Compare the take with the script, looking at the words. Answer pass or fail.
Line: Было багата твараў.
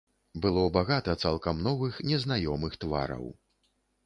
fail